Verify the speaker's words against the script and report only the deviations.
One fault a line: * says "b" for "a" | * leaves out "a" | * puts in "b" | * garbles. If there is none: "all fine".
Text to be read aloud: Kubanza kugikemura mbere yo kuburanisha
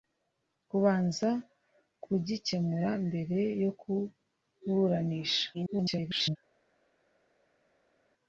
* garbles